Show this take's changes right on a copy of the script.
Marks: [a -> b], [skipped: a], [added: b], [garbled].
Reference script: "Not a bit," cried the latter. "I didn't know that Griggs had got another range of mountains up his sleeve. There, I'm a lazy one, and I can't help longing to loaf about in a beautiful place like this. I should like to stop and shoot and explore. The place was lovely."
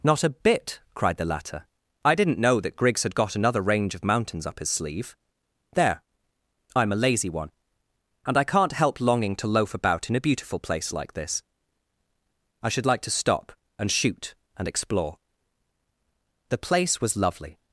"Not a bit," cried the latter. "I didn't know that Griggs had got another range of mountains up his sleeve. There, I'm a lazy one, and I can't help longing to loaf about in a beautiful place like this. I should like to stop and shoot and explore. The place was lovely."